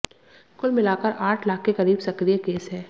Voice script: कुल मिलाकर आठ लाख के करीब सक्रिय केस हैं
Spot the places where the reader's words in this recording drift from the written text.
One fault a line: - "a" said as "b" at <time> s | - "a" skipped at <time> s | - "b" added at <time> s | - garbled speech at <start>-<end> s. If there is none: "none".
none